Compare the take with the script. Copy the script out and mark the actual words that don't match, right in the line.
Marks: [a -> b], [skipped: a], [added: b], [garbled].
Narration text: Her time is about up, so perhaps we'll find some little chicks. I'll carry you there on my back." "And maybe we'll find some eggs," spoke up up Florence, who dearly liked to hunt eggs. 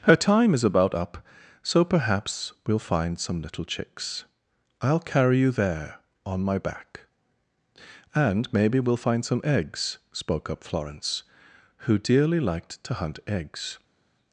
Her time is about up, so perhaps we'll find some little chicks. I'll carry you there on my back." "And maybe we'll find some eggs," spoke up [skipped: up] Florence, who dearly liked to hunt eggs.